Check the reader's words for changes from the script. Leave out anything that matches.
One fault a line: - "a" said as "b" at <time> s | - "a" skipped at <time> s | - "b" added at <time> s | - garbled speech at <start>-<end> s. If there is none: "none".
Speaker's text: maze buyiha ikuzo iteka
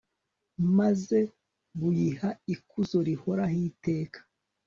- "rihoraho" added at 3.1 s